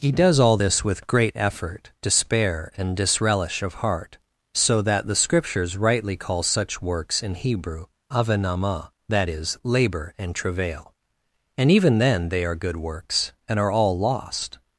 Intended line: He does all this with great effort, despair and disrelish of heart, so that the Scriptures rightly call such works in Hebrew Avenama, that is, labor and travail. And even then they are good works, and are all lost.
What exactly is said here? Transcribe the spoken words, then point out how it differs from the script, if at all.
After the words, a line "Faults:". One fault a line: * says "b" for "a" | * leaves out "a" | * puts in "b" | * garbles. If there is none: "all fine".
He does all this with great effort, despair and disrelish of heart, so that the Scriptures rightly call such works in Hebrew Avenama, that is, labor and travail. And even then they are good works, and are all lost.
Faults:
all fine